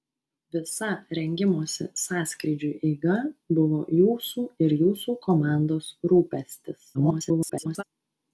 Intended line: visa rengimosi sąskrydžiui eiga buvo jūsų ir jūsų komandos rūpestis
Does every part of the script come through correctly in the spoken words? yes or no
no